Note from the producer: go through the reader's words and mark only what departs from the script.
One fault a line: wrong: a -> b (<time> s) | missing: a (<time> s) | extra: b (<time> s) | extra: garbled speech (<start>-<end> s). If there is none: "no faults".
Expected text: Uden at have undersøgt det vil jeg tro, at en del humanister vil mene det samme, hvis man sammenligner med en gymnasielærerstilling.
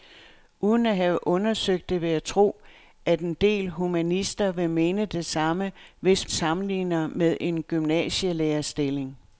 missing: man (6.3 s)